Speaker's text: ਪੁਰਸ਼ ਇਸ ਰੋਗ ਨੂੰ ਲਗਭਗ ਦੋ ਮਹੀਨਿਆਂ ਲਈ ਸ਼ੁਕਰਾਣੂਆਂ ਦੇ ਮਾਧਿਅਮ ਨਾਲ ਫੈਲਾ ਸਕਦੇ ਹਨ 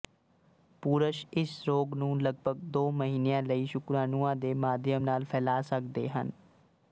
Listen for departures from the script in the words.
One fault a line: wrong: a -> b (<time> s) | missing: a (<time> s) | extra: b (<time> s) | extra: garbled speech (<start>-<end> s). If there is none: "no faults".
no faults